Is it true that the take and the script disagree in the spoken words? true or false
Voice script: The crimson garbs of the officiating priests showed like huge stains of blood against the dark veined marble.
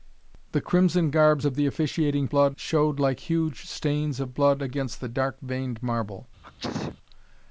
true